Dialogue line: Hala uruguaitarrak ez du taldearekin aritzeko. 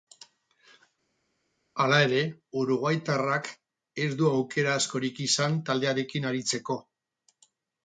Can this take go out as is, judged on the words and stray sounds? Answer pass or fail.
fail